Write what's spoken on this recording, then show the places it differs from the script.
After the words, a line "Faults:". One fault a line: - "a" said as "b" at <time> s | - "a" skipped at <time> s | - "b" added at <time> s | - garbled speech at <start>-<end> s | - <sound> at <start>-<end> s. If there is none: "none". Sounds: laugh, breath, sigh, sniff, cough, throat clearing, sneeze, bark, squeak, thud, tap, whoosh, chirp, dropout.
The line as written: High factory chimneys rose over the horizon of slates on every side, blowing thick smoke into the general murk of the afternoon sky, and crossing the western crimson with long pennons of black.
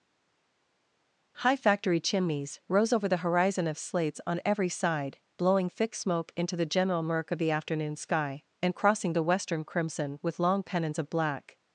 High factory chimneys rose over the horizon of slates on every side, blowing thick smoke into the general murk of the afternoon sky, and crossing the western crimson with long pennons of black.
Faults:
none